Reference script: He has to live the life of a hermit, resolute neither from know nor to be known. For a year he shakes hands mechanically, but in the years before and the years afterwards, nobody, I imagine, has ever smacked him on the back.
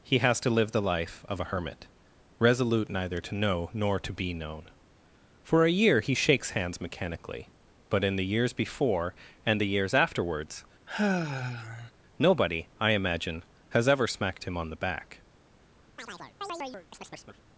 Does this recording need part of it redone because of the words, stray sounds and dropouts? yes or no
yes